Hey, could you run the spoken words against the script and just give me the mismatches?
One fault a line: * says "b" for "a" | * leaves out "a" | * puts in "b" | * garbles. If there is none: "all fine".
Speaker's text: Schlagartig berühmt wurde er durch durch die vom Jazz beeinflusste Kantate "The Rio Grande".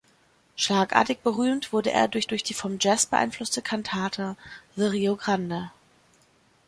all fine